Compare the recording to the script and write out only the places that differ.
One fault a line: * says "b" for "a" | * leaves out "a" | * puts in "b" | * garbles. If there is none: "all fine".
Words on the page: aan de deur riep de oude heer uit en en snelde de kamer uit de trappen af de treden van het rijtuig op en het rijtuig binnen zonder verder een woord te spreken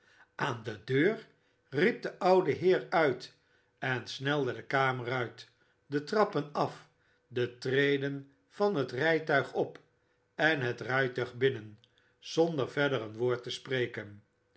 * leaves out "en"